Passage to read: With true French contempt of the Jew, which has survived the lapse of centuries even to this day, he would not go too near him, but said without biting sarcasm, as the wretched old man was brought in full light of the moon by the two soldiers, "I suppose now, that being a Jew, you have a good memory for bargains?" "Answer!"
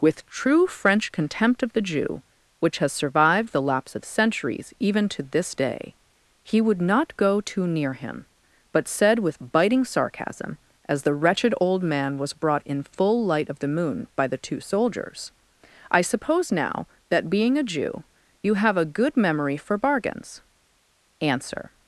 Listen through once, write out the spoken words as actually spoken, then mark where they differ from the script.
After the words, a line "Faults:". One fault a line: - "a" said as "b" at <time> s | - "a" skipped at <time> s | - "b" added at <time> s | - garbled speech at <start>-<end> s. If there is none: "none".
With true French contempt of the Jew, which has survived the lapse of centuries even to this day, he would not go too near him, but said with biting sarcasm, as the wretched old man was brought in full light of the moon by the two soldiers, "I suppose now, that being a Jew, you have a good memory for bargains?" "Answer!"
Faults:
- "without" said as "with" at 9.2 s